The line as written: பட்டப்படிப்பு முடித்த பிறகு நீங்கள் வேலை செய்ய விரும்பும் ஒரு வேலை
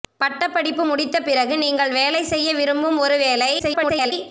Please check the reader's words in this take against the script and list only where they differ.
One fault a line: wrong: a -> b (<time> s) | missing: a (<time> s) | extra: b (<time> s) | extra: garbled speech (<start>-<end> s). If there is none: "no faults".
extra: garbled speech (3.6-4.1 s)